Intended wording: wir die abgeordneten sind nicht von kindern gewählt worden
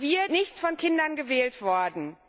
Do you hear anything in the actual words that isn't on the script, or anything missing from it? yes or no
yes